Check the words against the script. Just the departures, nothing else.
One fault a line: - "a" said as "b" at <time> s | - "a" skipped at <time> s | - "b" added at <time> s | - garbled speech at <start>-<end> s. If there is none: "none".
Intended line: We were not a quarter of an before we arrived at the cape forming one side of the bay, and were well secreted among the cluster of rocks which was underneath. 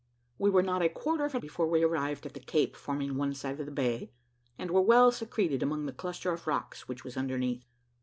none